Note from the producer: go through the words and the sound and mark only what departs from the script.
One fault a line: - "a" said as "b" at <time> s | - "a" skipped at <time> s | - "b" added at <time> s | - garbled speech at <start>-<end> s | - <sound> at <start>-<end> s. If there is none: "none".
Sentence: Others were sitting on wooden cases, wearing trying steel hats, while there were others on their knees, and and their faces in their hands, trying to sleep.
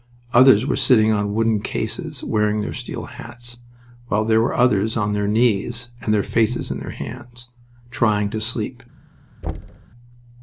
- "trying" said as "their" at 2.6 s
- "and" skipped at 6.1 s
- thud at 9.4-9.9 s